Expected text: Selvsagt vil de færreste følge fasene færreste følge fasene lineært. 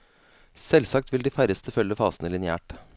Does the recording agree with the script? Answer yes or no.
no